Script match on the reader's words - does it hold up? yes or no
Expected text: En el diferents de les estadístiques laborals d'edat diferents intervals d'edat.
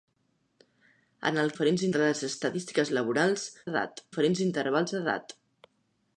yes